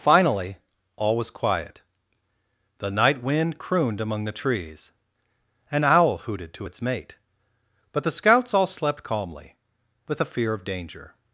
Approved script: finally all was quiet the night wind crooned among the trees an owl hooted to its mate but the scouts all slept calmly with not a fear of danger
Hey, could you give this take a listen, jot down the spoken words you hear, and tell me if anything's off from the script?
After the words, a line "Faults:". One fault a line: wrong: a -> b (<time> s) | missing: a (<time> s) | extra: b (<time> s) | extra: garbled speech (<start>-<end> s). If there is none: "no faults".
finally all was quiet the night wind crooned among the trees an owl hooted to its mate but the scouts all slept calmly with a fear of danger
Faults:
missing: not (10.2 s)